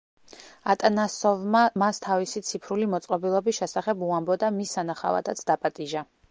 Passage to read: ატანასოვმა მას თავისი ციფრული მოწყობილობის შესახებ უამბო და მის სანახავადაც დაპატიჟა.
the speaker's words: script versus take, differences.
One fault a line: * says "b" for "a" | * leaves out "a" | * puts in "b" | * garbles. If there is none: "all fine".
all fine